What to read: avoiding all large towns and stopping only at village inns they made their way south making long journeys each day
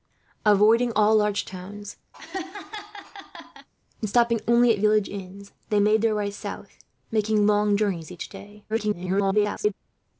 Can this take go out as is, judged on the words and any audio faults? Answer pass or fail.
fail